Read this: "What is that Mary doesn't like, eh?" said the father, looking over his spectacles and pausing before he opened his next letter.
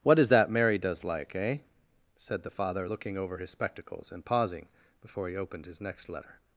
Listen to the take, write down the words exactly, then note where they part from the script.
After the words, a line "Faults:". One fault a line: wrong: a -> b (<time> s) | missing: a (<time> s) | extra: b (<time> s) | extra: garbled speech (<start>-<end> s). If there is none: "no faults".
"What is that Mary does like, eh?" said the father, looking over his spectacles and pausing before he opened his next letter.
Faults:
wrong: doesn't -> does (0.8 s)